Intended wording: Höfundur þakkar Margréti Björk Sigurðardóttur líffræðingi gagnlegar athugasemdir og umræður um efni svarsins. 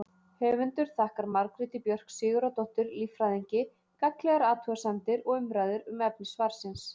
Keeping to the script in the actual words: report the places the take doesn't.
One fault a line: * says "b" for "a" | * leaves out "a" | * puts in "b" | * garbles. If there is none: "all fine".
all fine